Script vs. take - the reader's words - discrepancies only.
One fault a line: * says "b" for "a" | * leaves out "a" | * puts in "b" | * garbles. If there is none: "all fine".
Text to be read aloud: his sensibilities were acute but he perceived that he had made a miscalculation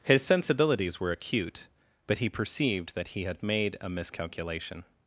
all fine